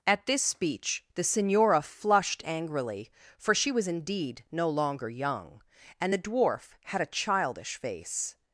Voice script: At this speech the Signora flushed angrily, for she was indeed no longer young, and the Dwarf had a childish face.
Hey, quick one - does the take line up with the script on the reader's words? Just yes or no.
yes